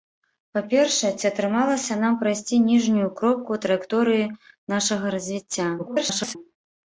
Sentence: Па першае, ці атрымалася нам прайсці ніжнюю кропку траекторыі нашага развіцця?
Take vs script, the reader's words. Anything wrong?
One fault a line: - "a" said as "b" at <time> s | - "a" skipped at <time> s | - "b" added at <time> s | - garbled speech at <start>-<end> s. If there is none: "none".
- garbled speech at 5.8-6.4 s